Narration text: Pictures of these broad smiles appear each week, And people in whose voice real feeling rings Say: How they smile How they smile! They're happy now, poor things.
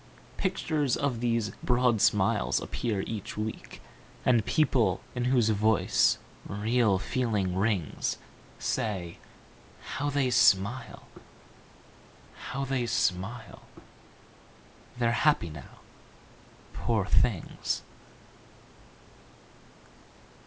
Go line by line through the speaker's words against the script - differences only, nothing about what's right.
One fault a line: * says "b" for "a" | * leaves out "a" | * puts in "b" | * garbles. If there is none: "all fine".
all fine